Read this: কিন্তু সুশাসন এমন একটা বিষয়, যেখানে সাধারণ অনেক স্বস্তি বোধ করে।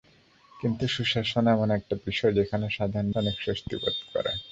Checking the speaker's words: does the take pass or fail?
pass